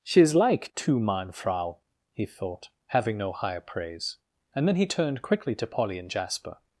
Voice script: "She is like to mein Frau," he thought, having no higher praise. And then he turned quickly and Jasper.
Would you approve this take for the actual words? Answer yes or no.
no